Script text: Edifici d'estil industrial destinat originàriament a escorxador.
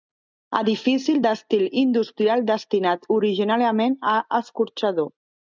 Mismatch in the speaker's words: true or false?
false